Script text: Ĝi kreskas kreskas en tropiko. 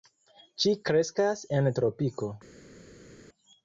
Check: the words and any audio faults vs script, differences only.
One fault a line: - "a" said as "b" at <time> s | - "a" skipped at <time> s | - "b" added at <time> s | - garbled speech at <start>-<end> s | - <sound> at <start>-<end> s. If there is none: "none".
- "kreskas" skipped at 1.4 s